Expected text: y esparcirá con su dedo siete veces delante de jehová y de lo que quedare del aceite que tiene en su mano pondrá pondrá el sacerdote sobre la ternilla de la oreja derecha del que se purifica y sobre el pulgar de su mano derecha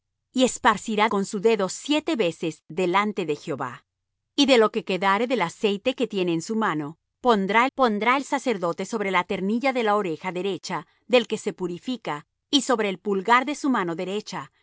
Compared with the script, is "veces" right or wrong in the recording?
right